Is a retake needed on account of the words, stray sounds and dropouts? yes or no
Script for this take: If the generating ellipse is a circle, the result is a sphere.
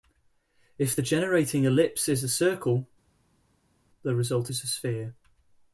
no